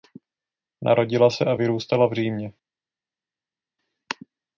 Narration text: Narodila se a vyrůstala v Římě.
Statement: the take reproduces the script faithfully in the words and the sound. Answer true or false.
true